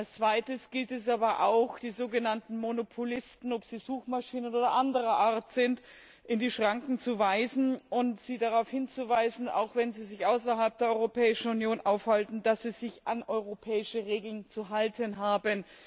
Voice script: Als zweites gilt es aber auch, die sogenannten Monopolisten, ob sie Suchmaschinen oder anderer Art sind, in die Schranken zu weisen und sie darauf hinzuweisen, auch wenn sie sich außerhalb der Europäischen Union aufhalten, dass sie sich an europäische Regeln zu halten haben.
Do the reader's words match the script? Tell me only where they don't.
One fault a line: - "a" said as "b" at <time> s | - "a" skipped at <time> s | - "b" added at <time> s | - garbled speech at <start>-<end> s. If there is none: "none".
none